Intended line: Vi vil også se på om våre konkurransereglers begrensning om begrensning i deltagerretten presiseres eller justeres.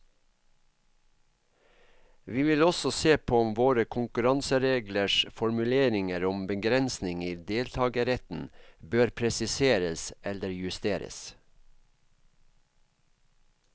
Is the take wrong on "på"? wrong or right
right